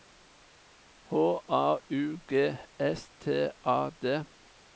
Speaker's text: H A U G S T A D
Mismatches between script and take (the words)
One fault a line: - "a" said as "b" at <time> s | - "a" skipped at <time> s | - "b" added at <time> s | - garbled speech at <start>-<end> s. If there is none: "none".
none